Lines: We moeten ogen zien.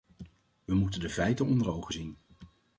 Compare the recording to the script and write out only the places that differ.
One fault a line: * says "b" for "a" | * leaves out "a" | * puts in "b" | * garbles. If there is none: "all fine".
* puts in "de feiten onder"